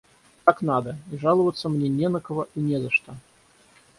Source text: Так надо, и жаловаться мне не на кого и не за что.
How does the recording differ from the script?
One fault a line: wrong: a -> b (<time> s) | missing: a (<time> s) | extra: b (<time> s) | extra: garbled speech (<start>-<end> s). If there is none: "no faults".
no faults